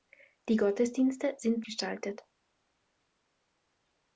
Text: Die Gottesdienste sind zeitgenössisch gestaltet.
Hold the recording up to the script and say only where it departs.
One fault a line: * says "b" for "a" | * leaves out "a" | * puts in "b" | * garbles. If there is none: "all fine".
* leaves out "zeitgenössisch"